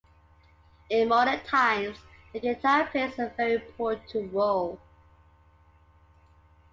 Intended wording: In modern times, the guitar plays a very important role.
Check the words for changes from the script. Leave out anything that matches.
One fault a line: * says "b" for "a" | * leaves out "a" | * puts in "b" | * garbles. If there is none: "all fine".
all fine